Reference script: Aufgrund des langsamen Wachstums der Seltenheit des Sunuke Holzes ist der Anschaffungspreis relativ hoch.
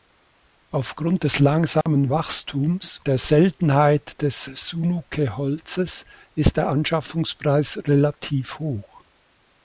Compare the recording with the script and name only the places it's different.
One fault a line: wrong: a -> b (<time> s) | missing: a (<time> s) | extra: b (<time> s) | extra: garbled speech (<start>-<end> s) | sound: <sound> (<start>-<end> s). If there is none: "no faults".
sound: dropout (1.8-1.9 s)